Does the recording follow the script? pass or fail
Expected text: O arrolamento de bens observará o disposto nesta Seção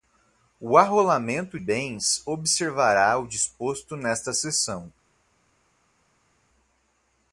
fail